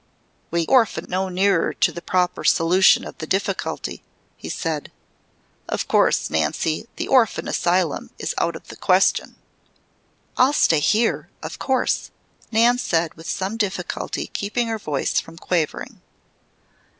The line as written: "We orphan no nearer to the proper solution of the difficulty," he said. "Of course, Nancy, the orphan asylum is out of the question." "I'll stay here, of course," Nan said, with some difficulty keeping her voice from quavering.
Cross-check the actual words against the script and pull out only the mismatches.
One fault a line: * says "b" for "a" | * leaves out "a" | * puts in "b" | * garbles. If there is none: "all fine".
all fine